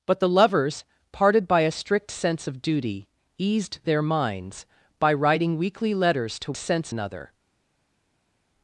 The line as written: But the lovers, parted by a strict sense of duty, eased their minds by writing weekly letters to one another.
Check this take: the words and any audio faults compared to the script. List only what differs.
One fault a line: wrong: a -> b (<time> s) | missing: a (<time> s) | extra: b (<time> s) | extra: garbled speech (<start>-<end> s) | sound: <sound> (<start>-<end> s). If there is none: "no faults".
wrong: one -> sense (6.5 s)